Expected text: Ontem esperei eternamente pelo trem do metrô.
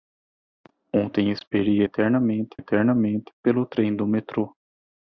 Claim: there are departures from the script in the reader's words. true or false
true